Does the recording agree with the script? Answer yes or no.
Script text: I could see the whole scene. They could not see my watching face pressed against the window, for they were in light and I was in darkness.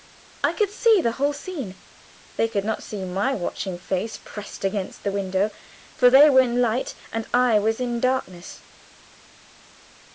yes